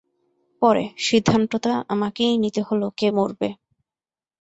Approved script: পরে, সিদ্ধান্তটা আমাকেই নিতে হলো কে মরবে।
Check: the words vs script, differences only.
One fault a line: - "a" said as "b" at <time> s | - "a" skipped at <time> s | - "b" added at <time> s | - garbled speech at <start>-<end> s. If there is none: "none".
none